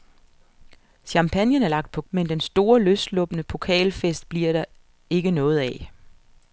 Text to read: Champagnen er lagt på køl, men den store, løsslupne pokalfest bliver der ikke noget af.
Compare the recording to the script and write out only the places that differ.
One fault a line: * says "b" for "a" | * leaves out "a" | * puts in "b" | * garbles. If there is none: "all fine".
* leaves out "køl"